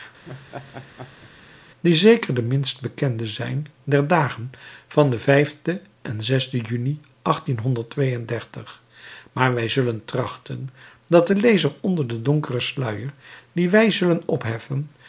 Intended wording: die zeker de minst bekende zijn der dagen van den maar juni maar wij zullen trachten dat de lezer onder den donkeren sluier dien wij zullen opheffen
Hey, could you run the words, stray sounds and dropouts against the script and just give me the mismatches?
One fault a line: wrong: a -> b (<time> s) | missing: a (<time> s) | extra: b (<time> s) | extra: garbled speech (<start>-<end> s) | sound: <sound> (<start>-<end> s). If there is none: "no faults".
sound: laugh (0.3-1.3 s)
wrong: maar -> en (6.0 s)